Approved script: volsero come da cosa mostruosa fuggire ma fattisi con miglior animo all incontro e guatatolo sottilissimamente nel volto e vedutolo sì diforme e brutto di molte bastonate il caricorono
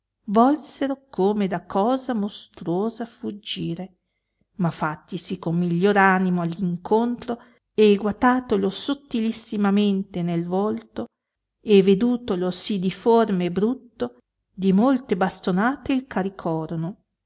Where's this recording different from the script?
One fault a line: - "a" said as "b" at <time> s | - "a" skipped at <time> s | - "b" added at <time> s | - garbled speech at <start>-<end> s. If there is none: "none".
none